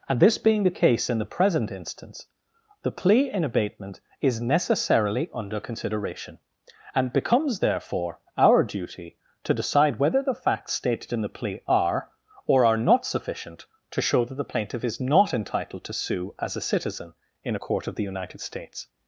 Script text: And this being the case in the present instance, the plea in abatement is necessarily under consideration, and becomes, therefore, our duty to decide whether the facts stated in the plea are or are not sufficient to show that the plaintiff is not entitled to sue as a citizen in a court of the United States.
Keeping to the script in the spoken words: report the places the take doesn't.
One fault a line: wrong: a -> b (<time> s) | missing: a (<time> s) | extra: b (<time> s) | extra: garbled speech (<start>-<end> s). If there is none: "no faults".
no faults